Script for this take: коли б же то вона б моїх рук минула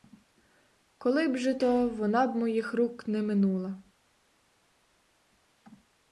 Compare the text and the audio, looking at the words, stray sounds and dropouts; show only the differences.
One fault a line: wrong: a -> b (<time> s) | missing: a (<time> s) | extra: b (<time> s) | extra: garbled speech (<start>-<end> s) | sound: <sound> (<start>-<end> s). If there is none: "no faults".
extra: не (3.1 s)